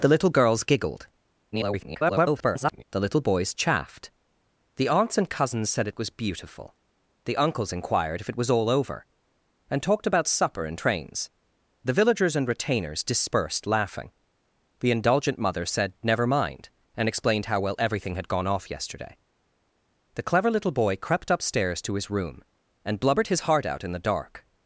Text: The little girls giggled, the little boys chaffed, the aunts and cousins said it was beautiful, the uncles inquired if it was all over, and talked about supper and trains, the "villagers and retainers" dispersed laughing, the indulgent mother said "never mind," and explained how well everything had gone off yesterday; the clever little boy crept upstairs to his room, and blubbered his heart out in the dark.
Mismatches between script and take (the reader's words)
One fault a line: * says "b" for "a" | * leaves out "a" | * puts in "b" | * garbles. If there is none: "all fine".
* garbles